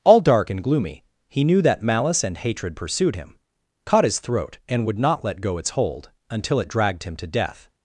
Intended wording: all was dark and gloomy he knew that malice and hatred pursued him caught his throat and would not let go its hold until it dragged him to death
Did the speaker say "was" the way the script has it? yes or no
no